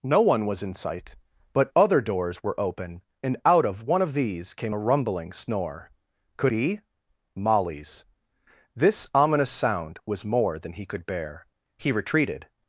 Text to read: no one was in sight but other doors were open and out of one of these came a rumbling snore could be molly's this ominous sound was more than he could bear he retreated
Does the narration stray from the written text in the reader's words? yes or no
no